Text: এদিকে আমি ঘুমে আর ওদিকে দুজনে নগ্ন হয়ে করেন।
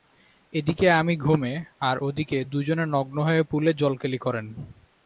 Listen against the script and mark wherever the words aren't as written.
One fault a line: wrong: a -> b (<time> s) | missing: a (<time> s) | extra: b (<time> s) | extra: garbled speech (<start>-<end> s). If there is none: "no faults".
extra: পুলে জলকেলি (3.4 s)